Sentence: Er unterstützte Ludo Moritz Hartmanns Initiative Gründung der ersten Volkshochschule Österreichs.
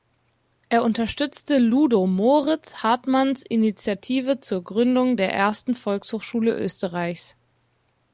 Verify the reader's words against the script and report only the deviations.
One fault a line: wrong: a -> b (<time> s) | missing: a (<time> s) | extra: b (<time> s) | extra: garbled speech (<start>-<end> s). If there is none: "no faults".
extra: zur (4.4 s)